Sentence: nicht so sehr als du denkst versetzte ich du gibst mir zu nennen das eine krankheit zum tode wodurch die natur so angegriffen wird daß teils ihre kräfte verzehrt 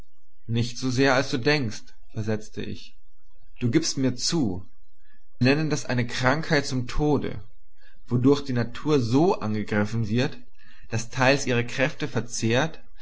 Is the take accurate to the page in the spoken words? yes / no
yes